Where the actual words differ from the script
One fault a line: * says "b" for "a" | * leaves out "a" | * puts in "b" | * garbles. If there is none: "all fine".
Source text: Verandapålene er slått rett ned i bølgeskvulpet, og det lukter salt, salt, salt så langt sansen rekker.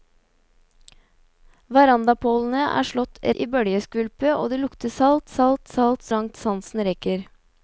* leaves out "rett ned"
* leaves out "så"